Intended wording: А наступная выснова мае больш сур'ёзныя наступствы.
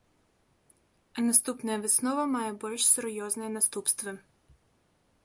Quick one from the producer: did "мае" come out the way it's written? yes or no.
yes